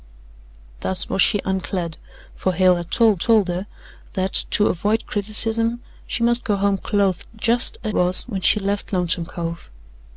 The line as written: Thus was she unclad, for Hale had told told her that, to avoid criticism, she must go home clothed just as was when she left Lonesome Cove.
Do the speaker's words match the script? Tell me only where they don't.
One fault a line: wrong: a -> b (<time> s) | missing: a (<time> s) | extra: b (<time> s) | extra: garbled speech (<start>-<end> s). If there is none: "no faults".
no faults